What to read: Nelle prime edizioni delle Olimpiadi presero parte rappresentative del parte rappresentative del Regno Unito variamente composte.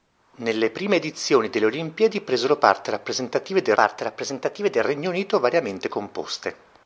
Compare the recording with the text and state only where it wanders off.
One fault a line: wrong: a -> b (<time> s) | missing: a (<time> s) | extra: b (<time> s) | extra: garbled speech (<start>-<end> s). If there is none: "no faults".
no faults